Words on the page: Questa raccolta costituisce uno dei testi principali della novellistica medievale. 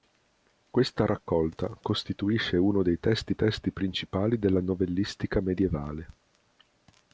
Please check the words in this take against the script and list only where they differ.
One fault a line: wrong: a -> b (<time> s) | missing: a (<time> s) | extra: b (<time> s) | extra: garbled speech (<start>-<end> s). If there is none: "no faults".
extra: testi (3.3 s)